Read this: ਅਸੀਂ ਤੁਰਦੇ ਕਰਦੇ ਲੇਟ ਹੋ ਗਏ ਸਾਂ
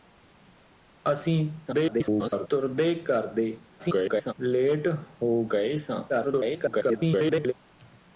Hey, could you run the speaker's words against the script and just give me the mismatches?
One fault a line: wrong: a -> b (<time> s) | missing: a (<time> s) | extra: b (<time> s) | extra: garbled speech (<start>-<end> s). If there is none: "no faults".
extra: garbled speech (1.7-2.5 s)
extra: garbled speech (3.8-4.3 s)
extra: garbled speech (6.1-7.5 s)